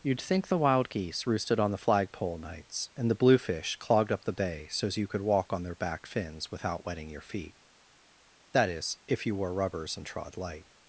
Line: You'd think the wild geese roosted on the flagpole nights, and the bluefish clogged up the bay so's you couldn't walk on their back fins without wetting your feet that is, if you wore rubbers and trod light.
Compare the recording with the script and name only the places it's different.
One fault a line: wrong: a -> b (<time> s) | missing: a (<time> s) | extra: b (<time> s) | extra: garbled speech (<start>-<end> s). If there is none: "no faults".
wrong: couldn't -> could (5.1 s)